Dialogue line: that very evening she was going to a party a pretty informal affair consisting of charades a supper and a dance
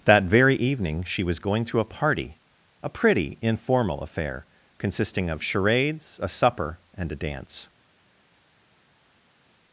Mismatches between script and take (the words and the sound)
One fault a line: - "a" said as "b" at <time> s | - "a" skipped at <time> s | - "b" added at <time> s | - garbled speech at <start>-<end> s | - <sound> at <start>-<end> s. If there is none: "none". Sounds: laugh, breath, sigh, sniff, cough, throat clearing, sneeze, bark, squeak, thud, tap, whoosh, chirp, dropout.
none